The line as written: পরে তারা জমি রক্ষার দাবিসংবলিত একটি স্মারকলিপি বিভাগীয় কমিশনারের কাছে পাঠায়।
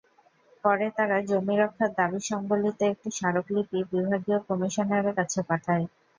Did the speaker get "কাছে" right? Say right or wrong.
right